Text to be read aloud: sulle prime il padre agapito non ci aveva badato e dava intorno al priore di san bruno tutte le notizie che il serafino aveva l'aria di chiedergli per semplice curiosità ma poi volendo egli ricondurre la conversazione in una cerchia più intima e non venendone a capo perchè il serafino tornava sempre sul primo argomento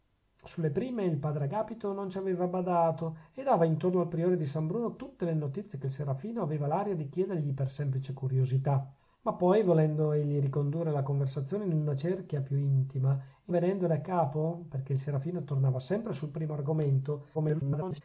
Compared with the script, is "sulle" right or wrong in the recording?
right